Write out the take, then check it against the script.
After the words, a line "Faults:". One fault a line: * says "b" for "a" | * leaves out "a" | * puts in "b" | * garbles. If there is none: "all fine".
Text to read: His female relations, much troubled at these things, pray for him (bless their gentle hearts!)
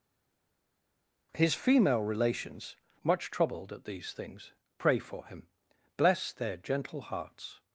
His female relations, much troubled at these things, pray for him (bless their gentle hearts!)
Faults:
all fine